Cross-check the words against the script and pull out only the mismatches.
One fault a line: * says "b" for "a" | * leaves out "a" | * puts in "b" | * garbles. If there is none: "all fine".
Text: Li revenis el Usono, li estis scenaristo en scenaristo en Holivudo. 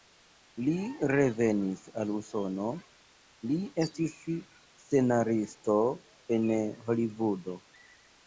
* says "al" for "el"
* leaves out "scenaristo en"